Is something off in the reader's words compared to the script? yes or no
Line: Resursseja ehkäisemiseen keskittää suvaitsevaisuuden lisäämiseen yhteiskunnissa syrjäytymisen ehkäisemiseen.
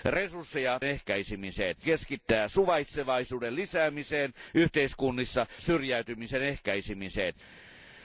no